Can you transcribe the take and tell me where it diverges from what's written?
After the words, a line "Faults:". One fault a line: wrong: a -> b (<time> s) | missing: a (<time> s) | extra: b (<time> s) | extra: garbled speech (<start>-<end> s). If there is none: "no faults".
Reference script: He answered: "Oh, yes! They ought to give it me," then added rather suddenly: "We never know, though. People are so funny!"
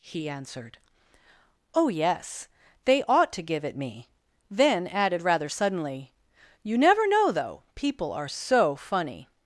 He answered: "Oh, yes! They ought to give it me," then added rather suddenly: "You never know, though. People are so funny!"
Faults:
wrong: We -> You (6.6 s)